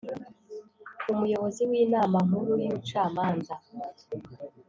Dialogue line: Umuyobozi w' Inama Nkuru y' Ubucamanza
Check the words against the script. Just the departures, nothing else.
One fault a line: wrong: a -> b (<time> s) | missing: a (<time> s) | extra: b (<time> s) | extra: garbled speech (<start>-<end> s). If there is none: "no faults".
no faults